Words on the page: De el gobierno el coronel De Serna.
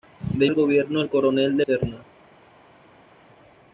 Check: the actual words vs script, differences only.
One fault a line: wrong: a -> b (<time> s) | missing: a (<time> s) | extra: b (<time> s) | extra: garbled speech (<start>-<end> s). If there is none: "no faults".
no faults